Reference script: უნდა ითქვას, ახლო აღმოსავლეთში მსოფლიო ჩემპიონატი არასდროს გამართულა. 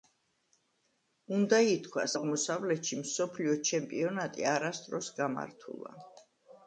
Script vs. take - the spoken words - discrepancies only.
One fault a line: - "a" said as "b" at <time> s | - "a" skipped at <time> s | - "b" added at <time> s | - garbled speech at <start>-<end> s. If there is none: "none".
- "ახლო" skipped at 2.1 s